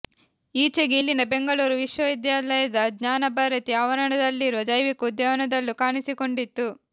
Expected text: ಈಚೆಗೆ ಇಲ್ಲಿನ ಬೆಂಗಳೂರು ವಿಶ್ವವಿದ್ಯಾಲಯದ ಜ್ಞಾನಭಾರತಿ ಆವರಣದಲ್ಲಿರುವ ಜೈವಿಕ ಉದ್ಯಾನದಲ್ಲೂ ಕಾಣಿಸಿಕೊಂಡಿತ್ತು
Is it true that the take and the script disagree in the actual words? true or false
false